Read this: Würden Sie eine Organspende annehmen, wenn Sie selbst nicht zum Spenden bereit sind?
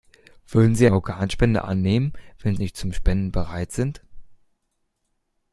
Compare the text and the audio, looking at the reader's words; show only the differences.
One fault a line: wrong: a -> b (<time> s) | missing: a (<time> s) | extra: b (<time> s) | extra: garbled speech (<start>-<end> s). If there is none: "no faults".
missing: eine (0.9 s)
missing: Sie selbst (2.6 s)